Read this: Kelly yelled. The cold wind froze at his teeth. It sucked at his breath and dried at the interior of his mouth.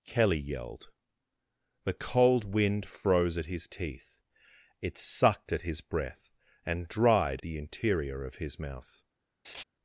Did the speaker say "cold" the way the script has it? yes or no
yes